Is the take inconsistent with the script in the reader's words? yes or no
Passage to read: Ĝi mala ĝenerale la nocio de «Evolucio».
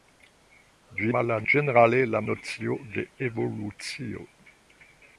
no